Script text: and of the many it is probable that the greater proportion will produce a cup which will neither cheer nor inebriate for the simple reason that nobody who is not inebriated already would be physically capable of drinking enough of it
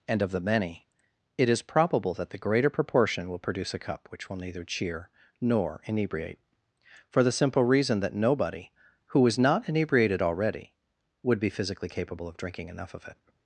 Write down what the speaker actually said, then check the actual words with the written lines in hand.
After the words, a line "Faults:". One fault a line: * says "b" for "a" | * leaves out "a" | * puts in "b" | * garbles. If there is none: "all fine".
and of the many it is probable that the greater proportion will produce a cup which will neither cheer nor inebriate for the simple reason that nobody who is not inebriated already would be physically capable of drinking enough of it
Faults:
all fine